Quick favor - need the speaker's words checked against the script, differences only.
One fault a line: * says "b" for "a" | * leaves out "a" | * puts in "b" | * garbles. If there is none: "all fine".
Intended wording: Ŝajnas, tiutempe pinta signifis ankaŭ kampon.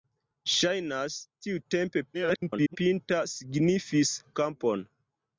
* garbles
* leaves out "ankaŭ"